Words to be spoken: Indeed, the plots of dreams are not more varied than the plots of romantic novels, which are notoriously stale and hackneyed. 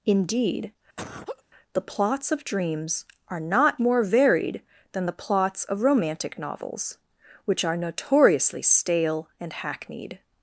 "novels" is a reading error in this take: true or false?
false